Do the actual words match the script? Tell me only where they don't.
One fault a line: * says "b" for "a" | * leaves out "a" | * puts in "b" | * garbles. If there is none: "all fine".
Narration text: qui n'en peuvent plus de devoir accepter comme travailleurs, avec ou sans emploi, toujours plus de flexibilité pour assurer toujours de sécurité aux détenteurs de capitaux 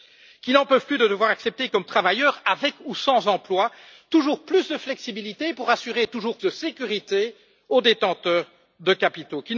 all fine